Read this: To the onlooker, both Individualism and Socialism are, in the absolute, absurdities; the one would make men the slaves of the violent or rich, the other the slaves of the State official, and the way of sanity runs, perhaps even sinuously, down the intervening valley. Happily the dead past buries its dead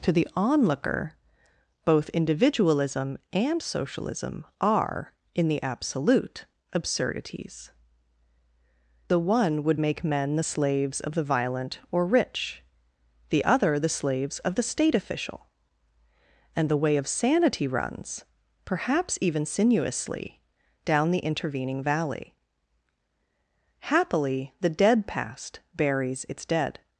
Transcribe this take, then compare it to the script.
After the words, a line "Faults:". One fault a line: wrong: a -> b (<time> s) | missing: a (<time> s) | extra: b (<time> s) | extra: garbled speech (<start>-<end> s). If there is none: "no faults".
To the onlooker, both Individualism and Socialism are, in the absolute, absurdities; the one would make men the slaves of the violent or rich, the other the slaves of the State official, and the way of sanity runs, perhaps even sinuously, down the intervening valley. Happily the dead past buries its dead
Faults:
no faults